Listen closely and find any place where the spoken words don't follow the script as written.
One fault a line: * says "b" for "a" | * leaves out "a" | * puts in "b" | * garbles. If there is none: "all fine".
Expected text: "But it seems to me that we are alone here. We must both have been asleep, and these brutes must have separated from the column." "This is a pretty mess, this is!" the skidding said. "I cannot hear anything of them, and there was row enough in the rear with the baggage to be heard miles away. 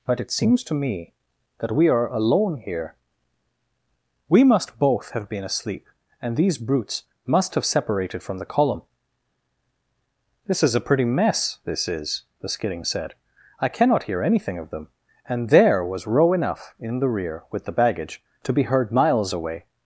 all fine